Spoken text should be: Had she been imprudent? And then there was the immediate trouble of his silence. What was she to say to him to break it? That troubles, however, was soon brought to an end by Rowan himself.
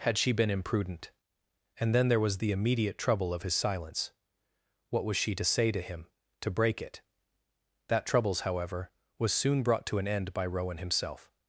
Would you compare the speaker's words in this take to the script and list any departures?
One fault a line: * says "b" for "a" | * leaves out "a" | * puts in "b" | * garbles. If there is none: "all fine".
all fine